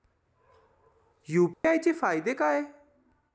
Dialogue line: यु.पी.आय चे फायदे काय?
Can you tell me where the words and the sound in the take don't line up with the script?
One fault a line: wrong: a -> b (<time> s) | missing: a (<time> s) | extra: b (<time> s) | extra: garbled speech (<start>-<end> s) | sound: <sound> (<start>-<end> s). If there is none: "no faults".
sound: dropout (1.5-1.6 s)